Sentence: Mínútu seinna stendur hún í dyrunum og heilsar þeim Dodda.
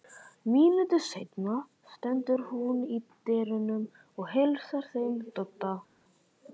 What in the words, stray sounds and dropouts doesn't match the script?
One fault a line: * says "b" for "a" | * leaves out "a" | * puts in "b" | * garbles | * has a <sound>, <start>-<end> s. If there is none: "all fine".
all fine